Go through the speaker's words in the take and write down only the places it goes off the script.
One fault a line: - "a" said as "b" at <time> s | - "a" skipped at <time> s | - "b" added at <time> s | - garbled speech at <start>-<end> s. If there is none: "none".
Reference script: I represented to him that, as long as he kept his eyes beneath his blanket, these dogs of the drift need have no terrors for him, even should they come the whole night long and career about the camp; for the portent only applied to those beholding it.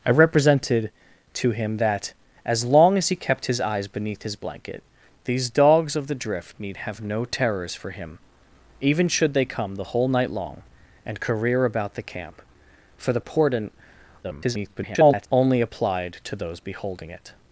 - garbled speech at 14.2-15.3 s